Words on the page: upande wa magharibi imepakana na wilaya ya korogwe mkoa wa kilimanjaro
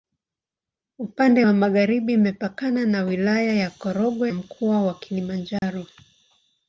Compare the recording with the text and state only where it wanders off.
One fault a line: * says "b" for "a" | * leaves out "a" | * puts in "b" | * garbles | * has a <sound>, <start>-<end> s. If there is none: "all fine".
* has a dropout, 5.6-5.6 s